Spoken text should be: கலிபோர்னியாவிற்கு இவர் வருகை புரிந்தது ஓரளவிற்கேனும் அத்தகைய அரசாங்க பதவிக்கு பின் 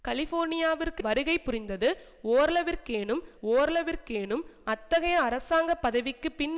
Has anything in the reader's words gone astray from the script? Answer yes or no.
yes